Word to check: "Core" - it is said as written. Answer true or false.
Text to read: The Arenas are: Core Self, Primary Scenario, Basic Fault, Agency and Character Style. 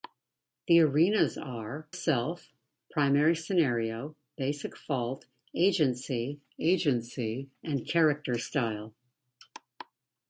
false